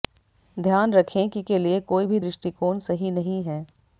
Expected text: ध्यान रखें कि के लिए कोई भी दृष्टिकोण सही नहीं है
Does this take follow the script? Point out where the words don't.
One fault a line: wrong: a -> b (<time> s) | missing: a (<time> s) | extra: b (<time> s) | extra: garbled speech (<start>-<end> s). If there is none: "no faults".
no faults